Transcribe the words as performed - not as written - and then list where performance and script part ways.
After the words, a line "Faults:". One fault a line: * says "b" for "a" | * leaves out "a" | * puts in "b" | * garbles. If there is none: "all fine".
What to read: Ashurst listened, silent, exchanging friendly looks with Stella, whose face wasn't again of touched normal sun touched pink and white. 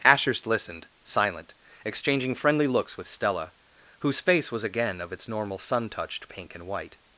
Ashurst listened, silent, exchanging friendly looks with Stella, whose face was again of its normal sun touched pink and white.
Faults:
* says "was" for "wasn't"
* says "its" for "touched"